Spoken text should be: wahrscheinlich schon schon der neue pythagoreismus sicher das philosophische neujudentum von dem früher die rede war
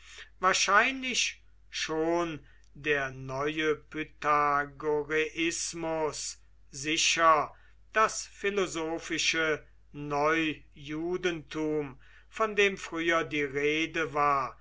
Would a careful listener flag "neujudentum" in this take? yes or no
no